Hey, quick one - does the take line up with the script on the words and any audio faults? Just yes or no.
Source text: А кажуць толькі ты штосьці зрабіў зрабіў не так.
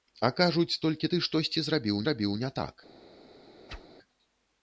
no